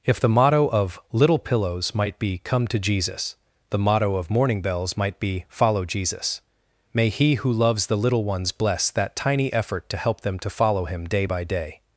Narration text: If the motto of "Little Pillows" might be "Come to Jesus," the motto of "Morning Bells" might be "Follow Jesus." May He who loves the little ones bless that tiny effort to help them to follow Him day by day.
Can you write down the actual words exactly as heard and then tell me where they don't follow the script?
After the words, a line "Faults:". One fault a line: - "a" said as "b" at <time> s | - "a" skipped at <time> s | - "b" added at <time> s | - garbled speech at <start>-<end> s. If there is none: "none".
If the motto of "Little Pillows" might be "Come to Jesus," the motto of "Morning Bells" might be "Follow Jesus." May He who loves the little ones bless that tiny effort to help them to follow Him day by day.
Faults:
none